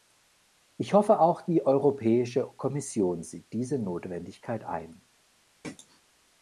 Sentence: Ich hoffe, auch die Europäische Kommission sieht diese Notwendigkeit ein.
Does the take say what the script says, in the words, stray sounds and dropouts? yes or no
no